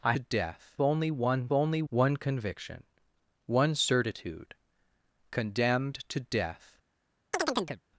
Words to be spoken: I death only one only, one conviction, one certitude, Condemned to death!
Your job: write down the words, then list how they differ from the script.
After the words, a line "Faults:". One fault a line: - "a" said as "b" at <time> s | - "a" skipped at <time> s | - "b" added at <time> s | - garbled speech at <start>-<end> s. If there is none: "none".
I death only one only, one conviction, one certitude, Condemned to death!
Faults:
none